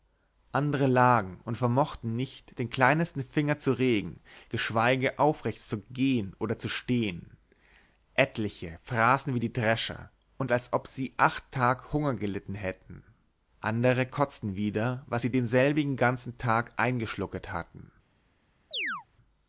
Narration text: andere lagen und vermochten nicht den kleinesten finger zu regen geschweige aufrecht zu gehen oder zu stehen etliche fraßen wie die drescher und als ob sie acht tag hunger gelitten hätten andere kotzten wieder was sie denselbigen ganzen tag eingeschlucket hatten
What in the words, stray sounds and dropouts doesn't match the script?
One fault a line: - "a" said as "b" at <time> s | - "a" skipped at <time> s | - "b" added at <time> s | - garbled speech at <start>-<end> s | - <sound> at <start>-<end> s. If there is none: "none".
- chirp at 18.7-19.1 s